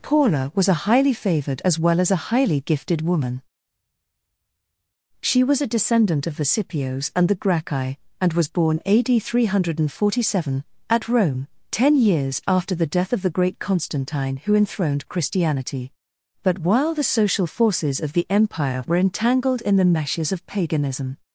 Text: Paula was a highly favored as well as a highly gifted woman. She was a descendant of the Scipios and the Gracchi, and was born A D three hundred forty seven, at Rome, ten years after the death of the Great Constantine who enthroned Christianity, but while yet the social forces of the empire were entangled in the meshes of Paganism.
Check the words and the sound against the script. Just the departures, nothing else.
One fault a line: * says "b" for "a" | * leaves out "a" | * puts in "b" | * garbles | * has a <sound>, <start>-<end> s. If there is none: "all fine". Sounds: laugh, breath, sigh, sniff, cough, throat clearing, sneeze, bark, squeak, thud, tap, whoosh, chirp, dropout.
* leaves out "yet"